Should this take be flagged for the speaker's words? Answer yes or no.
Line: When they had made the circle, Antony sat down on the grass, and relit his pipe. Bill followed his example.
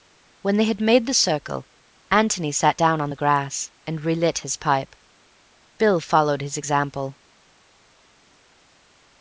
no